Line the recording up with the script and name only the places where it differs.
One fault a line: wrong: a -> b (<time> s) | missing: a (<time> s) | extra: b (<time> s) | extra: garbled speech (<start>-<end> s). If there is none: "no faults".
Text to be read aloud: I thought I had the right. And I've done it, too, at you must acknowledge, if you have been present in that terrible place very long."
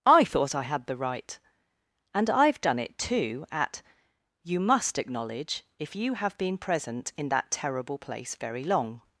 no faults